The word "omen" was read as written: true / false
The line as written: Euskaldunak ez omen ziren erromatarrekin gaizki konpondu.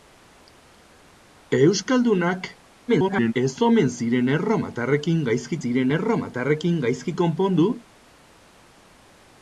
true